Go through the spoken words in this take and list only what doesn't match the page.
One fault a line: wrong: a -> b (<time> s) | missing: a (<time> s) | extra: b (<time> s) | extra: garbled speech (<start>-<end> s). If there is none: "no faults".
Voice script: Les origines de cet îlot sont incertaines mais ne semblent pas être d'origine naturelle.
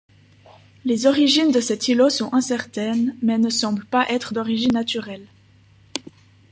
no faults